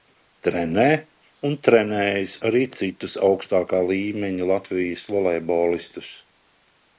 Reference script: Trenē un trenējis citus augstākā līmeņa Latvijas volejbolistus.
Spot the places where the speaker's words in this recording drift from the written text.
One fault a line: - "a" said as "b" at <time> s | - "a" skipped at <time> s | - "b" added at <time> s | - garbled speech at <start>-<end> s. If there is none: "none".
- "arī" added at 2.5 s